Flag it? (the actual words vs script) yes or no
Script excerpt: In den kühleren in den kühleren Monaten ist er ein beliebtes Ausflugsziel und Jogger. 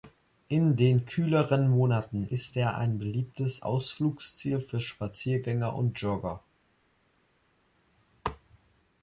yes